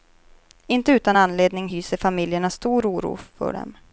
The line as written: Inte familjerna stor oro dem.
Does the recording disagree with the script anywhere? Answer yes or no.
yes